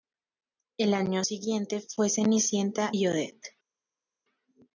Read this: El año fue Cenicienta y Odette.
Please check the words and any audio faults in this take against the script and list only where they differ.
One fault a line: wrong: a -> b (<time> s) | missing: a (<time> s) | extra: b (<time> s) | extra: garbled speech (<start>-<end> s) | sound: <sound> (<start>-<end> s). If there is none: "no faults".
extra: siguiente (1.2 s)